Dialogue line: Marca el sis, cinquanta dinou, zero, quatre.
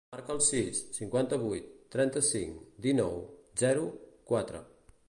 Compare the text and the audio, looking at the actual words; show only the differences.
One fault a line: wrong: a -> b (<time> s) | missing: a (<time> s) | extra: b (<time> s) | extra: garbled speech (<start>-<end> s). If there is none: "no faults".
extra: vuit trenta cinc (1.4 s)